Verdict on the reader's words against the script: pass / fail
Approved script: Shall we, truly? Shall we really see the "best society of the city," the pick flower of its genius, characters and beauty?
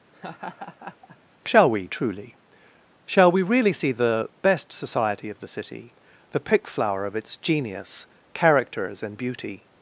pass